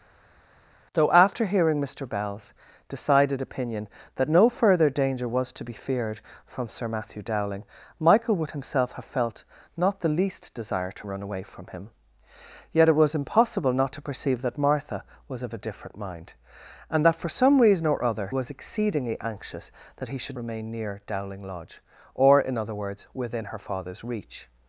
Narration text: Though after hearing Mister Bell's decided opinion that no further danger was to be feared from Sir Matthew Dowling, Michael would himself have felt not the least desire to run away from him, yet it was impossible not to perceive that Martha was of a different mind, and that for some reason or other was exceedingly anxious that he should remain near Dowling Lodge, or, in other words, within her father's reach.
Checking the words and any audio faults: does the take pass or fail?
pass